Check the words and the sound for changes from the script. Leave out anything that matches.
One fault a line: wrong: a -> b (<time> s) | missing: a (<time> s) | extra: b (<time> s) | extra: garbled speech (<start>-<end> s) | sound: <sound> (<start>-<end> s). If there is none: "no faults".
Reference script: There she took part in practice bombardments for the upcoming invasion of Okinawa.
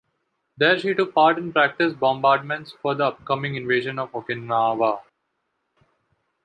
no faults